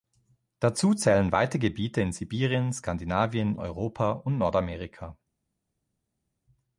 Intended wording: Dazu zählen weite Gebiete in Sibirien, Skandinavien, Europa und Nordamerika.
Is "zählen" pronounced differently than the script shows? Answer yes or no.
no